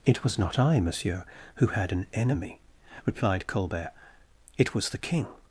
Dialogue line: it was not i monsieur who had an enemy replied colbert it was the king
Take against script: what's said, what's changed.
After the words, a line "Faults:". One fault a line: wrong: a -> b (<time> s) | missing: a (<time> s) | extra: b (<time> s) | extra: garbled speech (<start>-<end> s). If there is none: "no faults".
it was not i monsieur who had an enemy replied colbert it was the king
Faults:
no faults